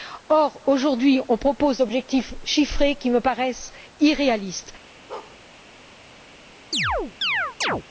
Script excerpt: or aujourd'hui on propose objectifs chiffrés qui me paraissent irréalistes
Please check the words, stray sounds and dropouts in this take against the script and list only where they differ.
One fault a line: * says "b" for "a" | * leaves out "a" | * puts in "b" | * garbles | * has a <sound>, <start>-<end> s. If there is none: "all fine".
* has a bark, 5.1-5.4 s
* has a chirp, 6.7-7.8 s